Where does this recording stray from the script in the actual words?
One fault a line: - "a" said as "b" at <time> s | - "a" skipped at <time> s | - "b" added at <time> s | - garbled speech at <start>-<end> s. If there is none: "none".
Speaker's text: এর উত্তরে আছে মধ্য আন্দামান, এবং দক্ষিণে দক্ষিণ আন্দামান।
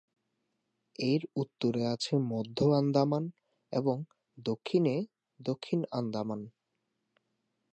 none